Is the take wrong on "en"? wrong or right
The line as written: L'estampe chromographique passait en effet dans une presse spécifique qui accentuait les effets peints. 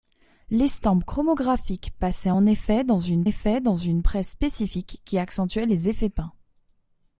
right